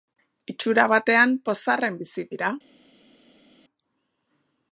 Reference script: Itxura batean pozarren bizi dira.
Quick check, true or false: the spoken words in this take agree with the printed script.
true